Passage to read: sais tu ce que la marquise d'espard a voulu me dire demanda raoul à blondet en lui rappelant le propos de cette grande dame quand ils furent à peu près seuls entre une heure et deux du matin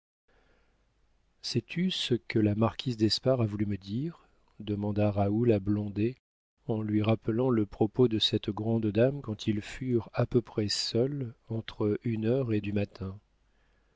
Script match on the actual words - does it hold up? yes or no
no